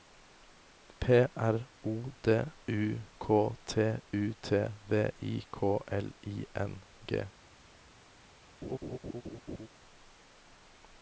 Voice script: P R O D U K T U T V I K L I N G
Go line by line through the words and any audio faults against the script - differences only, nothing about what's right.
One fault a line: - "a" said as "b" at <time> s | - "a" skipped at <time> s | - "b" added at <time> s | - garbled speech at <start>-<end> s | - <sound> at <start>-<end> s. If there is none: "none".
- laugh at 8.6-9.7 s